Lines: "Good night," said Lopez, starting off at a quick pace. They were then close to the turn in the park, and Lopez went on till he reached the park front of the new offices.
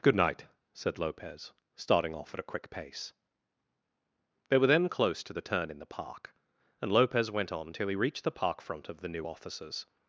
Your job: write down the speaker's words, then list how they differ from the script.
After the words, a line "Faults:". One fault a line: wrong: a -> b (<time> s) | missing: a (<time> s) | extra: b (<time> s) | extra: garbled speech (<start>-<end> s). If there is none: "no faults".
"Good night," said Lopez, starting off at a quick pace. They were then close to the turn in the park, and Lopez went on till he reached the park front of the new offices.
Faults:
no faults